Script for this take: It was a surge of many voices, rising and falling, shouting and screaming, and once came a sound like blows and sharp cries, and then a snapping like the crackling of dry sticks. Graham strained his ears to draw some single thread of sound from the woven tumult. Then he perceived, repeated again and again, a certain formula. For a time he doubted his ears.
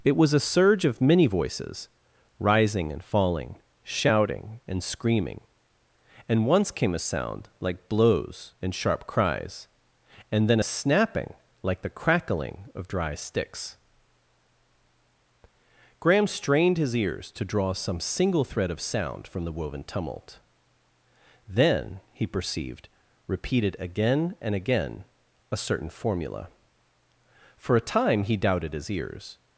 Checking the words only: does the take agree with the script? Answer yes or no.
yes